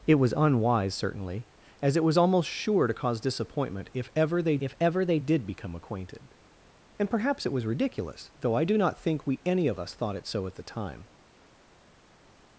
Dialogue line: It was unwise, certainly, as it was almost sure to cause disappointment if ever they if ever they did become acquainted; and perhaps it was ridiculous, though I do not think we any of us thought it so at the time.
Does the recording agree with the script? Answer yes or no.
yes